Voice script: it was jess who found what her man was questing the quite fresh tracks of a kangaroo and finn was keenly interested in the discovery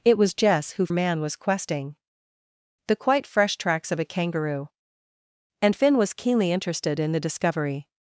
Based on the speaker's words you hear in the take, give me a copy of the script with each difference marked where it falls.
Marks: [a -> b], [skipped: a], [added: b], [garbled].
it was jess who [skipped: found what her] man was questing the quite fresh tracks of a kangaroo and finn was keenly interested in the discovery